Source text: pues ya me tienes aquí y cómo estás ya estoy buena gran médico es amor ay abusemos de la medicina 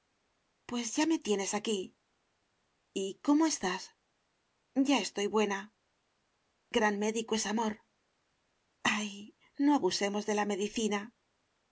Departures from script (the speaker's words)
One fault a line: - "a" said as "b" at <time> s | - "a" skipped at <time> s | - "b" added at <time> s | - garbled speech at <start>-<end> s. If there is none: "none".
- "no" added at 9.6 s